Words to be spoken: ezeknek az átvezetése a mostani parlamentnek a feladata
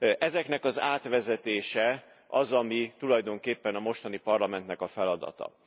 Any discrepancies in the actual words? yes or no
yes